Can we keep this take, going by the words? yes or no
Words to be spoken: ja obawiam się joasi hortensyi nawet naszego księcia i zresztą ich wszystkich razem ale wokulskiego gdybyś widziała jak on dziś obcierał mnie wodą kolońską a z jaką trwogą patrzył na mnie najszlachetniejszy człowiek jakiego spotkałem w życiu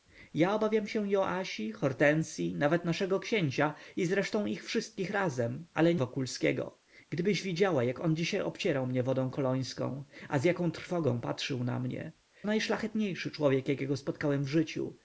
yes